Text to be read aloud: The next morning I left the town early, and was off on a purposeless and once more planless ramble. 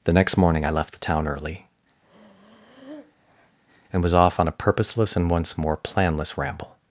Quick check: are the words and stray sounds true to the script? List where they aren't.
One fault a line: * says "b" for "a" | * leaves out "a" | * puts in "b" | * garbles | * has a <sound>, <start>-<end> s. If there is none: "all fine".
* has a breath, 2.0-3.6 s